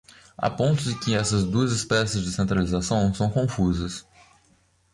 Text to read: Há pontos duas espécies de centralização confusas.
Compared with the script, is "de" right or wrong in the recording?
right